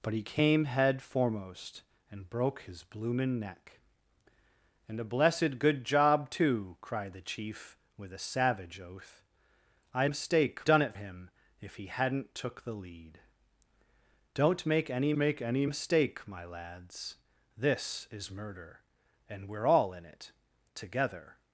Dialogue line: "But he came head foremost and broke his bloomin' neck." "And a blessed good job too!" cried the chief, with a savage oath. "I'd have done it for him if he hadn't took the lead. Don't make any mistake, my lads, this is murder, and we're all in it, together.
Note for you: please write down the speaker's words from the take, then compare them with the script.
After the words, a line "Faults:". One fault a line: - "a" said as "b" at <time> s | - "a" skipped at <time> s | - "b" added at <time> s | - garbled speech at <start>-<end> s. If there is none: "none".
"But he came head foremost and broke his bloomin' neck." "And a blessed good job too!" cried the chief, with a savage oath. "I'd mistake done it him if he hadn't took the lead. Don't make any make any mistake, my lads, this is murder, and we're all in it, together.
Faults:
- "have" said as "mistake" at 10.0 s
- "for" skipped at 10.9 s
- "make any" added at 15.1 s